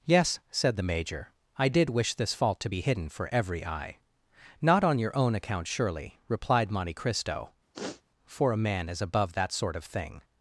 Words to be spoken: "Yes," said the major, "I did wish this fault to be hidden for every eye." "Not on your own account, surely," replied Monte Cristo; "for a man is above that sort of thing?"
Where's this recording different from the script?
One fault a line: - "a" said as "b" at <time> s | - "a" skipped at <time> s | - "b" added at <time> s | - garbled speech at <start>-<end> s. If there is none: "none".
none